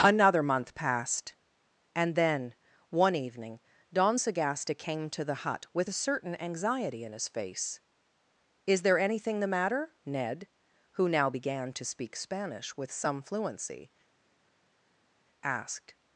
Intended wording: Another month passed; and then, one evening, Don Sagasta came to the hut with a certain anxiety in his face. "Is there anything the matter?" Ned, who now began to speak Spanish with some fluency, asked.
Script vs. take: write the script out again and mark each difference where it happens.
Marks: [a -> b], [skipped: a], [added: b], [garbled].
Another month passed; and then, one evening, Don Sagasta came to the hut with a certain anxiety in his face. "Is there anything the matter?" Ned, who now began to speak Spanish with some fluency, asked.